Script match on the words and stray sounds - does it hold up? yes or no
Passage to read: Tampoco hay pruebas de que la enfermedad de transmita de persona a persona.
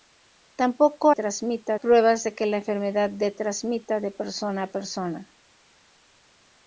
no